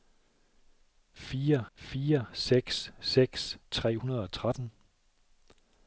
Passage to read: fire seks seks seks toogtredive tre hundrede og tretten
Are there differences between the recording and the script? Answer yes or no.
yes